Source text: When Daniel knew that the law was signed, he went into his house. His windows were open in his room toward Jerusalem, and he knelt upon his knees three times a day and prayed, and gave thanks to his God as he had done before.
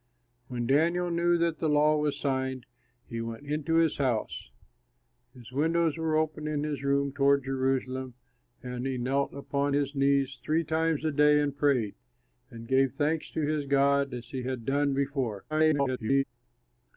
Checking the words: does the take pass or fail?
fail